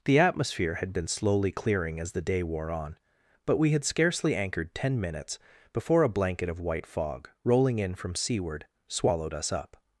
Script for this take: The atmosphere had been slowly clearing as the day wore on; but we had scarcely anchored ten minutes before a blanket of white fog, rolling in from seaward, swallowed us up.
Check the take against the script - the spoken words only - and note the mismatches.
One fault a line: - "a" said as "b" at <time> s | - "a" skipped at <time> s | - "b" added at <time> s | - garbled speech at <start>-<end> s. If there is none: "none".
none